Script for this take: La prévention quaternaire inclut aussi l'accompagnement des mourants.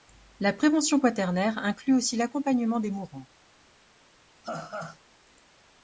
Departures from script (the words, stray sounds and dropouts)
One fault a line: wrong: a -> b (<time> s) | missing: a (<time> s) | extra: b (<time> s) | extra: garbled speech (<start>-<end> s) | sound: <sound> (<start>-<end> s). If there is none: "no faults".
sound: laugh (4.4-5.0 s)